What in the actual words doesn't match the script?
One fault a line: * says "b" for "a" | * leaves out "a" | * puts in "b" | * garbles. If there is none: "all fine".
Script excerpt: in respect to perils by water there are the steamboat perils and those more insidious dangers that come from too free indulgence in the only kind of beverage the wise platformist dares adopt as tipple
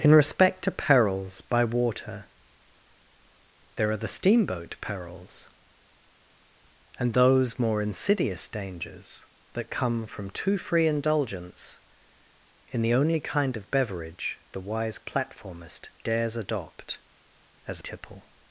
all fine